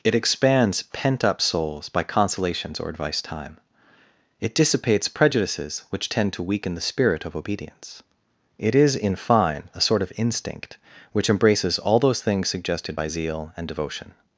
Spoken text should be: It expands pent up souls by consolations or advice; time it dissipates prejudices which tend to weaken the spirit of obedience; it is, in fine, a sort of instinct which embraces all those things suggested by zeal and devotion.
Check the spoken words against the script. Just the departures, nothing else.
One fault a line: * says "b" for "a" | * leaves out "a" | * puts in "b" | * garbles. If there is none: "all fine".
all fine